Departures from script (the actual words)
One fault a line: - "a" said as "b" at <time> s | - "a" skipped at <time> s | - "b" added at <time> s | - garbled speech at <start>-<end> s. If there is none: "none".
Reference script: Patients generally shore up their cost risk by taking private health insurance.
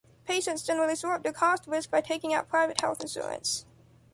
- "out" added at 2.3 s